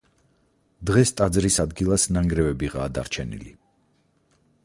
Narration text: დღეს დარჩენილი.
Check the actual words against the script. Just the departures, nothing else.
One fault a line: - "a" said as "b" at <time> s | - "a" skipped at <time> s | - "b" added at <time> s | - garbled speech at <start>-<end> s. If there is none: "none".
- "ტაძრის ადგილას ნანგრევებიღაა" added at 1.2 s